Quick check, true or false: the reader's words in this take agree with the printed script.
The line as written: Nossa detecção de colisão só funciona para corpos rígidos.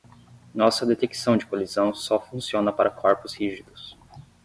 true